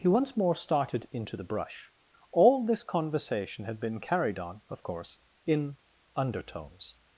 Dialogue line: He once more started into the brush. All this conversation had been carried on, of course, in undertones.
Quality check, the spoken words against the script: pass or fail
pass